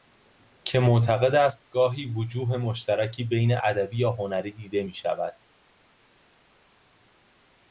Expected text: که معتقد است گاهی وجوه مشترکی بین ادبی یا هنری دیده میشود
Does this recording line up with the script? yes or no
yes